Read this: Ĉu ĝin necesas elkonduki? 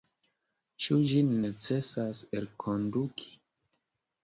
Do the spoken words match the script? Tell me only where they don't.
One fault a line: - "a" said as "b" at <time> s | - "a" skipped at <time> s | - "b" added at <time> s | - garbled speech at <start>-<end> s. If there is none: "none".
none